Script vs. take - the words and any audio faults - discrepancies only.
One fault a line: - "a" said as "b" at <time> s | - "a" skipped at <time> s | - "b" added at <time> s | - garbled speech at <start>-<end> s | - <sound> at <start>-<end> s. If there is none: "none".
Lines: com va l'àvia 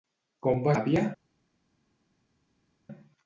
none